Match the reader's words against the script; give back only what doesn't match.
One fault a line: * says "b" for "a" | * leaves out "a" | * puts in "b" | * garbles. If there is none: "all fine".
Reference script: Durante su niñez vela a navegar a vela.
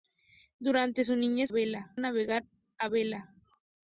all fine